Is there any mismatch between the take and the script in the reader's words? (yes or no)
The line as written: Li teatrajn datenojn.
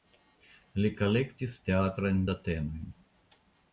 yes